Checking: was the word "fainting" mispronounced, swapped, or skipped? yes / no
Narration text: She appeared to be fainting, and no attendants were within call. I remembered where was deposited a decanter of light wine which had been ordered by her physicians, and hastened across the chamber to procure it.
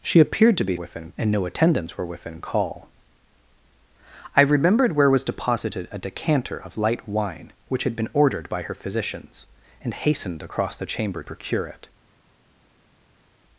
yes